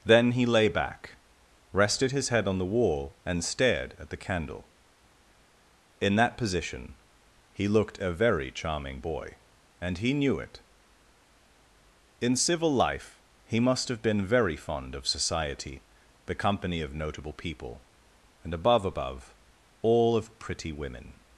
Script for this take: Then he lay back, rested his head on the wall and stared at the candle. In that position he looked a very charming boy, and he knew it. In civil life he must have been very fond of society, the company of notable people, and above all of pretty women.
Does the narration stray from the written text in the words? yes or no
yes